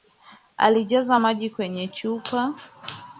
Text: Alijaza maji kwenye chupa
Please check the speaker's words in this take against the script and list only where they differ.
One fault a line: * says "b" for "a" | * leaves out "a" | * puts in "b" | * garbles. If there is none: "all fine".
all fine